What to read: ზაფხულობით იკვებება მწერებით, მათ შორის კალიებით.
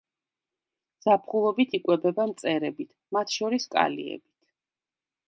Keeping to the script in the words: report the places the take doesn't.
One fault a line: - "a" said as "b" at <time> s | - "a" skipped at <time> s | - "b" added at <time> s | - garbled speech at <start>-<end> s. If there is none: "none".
none